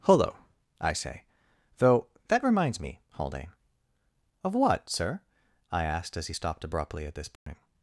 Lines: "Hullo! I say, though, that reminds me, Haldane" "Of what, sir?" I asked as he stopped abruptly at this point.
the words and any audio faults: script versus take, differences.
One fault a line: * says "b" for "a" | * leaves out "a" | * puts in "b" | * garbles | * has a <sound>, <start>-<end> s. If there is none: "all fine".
* has a dropout, 7.4-7.5 s